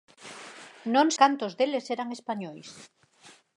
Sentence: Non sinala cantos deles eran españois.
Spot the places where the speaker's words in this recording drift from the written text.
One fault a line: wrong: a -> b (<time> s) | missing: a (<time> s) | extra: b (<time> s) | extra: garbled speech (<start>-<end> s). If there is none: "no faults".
missing: sinala (1.1 s)